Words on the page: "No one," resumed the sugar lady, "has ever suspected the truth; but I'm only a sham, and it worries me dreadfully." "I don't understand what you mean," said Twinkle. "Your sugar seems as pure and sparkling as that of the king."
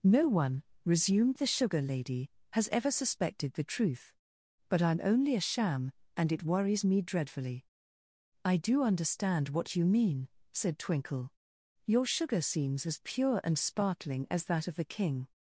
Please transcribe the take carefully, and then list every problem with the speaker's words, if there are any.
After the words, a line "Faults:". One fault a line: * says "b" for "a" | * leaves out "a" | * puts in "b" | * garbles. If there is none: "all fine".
"No one," resumed the sugar lady, "has ever suspected the truth; but I'm only a sham, and it worries me dreadfully." "I do understand what you mean," said Twinkle. "Your sugar seems as pure and sparkling as that of the king."
Faults:
* says "do" for "don't"